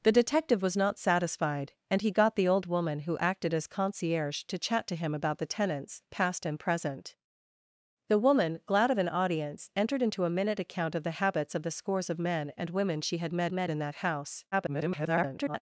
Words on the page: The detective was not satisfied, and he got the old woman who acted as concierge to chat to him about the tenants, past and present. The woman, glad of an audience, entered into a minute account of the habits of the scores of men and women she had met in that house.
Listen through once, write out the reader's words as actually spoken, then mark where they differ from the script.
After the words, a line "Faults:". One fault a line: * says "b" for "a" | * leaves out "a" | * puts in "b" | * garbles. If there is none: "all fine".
The detective was not satisfied, and he got the old woman who acted as concierge to chat to him about the tenants, past and present. The woman, glad of an audience, entered into a minute account of the habits of the scores of men and women she had met met in that house. [garbled]
Faults:
* puts in "met"
* garbles